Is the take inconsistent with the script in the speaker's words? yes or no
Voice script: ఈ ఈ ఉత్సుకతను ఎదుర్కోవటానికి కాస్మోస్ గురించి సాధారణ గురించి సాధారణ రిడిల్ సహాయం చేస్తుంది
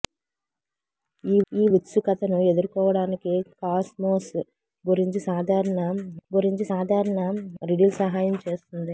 no